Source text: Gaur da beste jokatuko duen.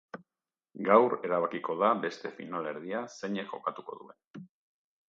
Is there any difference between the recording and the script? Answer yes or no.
yes